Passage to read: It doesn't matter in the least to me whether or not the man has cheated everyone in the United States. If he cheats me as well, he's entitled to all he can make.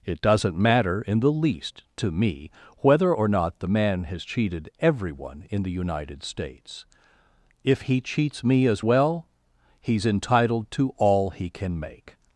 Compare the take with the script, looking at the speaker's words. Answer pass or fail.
pass